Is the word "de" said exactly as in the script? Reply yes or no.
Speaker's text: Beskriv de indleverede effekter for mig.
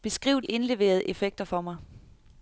no